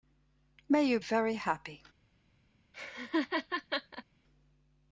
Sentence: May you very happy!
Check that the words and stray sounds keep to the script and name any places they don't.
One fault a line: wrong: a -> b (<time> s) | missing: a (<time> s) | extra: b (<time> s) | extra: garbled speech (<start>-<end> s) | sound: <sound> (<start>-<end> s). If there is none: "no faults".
sound: laugh (2.7-4.0 s)